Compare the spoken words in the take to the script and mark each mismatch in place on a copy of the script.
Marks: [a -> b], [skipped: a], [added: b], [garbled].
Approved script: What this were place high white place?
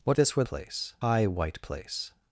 What this were place high white place?